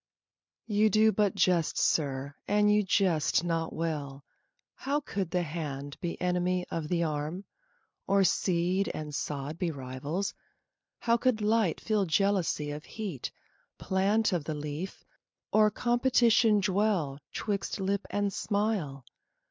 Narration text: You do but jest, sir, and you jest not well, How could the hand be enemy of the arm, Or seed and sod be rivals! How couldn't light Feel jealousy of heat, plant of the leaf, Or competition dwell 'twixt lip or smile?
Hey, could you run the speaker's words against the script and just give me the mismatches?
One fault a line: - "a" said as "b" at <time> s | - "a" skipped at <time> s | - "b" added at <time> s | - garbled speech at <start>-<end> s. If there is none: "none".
- "couldn't" said as "could" at 11.2 s
- "or" said as "and" at 18.1 s